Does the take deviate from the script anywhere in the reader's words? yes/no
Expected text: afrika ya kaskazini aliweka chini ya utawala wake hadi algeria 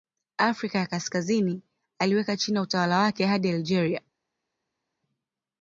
no